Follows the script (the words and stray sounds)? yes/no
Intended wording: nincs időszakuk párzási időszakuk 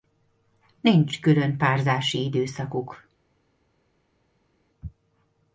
no